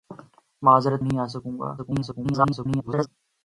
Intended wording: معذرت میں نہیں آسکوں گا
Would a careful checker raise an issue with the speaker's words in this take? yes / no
yes